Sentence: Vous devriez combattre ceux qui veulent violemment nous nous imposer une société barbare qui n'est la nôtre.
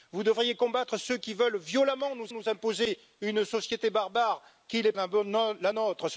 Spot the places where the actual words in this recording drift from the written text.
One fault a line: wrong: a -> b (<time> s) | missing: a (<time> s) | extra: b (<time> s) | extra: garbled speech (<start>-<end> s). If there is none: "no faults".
no faults